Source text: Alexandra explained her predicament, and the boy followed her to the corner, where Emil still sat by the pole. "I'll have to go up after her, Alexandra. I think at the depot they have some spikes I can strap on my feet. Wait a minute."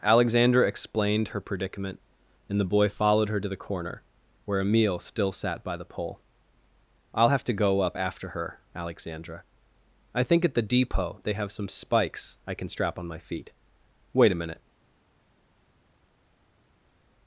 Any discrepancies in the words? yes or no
no